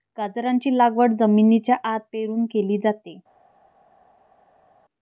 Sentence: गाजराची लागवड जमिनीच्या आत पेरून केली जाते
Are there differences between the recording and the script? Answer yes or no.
no